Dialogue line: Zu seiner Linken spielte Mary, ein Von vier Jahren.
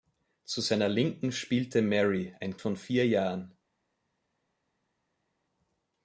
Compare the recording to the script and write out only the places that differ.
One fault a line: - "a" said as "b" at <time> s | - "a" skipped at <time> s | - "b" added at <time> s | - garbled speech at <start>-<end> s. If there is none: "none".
none